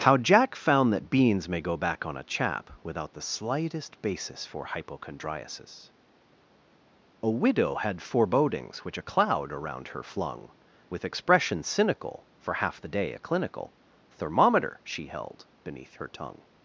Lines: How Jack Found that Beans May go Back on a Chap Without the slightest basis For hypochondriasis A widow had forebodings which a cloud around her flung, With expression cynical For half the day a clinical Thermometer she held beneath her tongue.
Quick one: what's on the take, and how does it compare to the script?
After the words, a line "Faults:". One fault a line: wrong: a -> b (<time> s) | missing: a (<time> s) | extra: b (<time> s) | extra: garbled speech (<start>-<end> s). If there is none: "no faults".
How Jack Found that Beans May go Back on a Chap Without the slightest basis For hypochondriasis A widow had forebodings which a cloud around her flung, With expression cynical For half the day a clinical Thermometer she held beneath her tongue.
Faults:
no faults